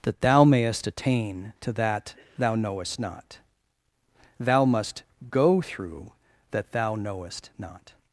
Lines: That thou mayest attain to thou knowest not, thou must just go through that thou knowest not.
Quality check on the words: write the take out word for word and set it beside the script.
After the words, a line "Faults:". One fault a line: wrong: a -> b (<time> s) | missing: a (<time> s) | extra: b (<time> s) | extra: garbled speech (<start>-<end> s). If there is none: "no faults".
That thou mayest attain to that thou knowest not, thou must go through that thou knowest not.
Faults:
extra: that (1.7 s)
missing: just (5.0 s)